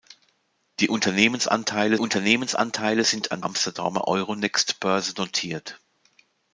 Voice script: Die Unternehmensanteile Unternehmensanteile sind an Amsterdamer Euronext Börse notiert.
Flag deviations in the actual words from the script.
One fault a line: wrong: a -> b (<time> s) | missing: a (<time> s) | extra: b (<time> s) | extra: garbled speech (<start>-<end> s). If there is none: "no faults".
no faults